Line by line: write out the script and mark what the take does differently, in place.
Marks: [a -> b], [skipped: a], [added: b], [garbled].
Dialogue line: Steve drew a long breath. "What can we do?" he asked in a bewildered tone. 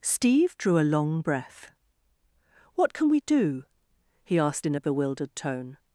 Steve drew a long breath. "What can we do?" he asked in a bewildered tone.